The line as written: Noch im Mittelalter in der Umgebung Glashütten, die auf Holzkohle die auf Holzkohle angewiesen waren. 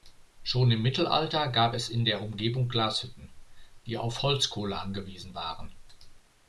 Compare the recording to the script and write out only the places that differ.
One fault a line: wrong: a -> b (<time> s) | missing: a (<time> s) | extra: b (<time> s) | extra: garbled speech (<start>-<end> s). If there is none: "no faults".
wrong: Noch -> Schon (0.4 s)
extra: gab es (1.5 s)
missing: die auf Holzkohle (4.8 s)